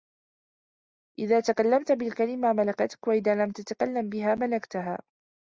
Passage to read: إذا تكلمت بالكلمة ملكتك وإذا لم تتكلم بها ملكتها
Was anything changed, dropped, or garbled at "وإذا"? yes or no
no